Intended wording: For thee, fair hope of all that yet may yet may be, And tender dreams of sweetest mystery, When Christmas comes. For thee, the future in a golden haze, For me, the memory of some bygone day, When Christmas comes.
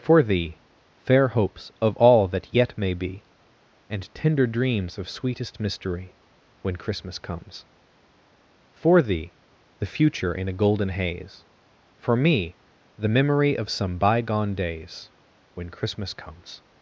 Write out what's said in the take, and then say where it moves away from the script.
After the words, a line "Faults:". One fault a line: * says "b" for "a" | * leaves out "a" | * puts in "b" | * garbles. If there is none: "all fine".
For thee, fair hopes of all that yet may be, And tender dreams of sweetest mystery, When Christmas comes. For thee, the future in a golden haze, For me, the memory of some bygone days, When Christmas comes.
Faults:
* says "hopes" for "hope"
* leaves out "yet may"
* says "days" for "day"